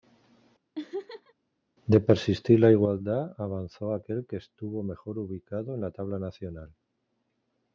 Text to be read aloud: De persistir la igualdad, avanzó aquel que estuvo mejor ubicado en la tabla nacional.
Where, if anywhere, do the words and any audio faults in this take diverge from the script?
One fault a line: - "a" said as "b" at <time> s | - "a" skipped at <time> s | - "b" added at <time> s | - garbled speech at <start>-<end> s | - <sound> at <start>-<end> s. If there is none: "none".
- laugh at 0.8-1.3 s